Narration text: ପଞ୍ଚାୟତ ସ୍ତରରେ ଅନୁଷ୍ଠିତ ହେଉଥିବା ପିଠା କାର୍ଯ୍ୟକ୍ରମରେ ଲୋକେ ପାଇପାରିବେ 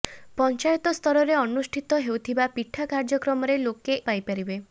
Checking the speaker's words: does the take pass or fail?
pass